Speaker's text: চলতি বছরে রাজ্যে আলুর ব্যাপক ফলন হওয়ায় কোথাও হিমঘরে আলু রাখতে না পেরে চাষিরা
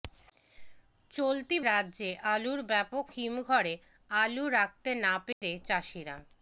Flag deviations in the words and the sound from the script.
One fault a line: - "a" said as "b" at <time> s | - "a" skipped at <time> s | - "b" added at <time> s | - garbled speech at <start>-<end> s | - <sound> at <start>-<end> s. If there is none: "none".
- "বছরে" skipped at 1.6 s
- "ফলন হওয়ায় কোথাও" skipped at 3.0 s
- dropout at 5.3-5.4 s